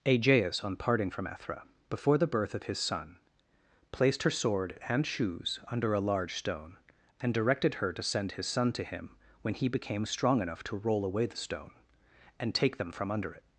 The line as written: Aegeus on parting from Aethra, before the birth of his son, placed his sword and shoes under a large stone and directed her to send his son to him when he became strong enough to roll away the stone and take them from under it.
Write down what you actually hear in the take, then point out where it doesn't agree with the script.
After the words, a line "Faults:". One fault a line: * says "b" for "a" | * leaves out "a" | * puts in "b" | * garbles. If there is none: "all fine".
Aegeus on parting from Aethra, before the birth of his son, placed her sword and shoes under a large stone and directed her to send his son to him when he became strong enough to roll away the stone and take them from under it.
Faults:
* says "her" for "his"